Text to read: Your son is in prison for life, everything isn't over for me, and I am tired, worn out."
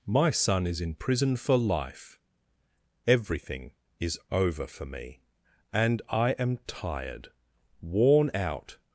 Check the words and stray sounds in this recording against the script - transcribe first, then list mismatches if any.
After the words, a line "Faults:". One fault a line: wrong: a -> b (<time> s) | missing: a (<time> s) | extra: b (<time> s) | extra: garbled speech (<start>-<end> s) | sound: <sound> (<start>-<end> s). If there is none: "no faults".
My son is in prison for life, everything is over for me, and I am tired, worn out."
Faults:
wrong: Your -> My (0.1 s)
wrong: isn't -> is (4.0 s)